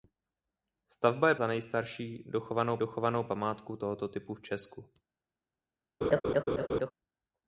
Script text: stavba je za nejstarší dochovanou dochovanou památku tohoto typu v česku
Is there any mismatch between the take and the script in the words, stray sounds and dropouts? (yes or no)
yes